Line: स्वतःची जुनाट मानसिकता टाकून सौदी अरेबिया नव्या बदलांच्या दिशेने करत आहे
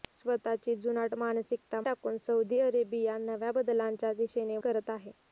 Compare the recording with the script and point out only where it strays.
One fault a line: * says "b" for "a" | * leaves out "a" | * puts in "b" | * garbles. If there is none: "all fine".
all fine